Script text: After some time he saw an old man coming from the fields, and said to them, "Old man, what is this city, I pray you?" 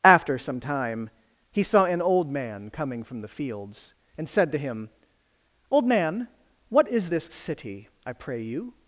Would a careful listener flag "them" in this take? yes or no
yes